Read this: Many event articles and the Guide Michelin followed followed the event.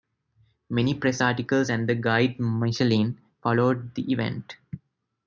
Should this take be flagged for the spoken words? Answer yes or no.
yes